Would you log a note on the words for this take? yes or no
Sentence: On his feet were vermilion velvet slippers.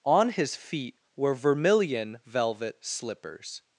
no